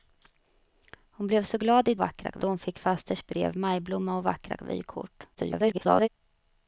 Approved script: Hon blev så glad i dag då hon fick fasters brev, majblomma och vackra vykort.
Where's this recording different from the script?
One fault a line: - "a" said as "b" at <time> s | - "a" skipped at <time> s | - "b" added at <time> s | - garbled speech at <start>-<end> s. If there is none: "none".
- "dag" said as "vackra" at 2.0 s
- garbled speech at 5.3-6.1 s